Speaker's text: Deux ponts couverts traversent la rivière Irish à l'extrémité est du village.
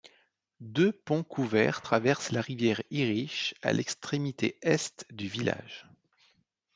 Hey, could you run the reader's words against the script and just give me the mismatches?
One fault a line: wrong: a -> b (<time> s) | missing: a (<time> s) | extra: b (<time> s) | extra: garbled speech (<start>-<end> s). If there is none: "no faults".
no faults